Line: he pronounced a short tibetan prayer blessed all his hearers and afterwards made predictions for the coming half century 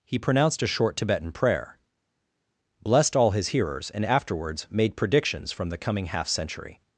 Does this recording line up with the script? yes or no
no